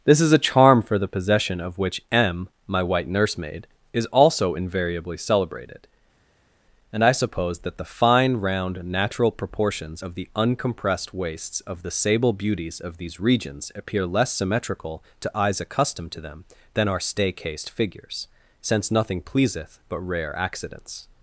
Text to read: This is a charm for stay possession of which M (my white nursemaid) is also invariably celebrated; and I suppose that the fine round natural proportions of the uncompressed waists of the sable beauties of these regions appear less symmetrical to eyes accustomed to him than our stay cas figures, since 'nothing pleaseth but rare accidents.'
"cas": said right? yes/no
no